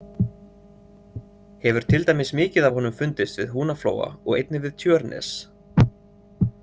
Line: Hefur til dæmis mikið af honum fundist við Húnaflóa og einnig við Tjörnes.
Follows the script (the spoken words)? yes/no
yes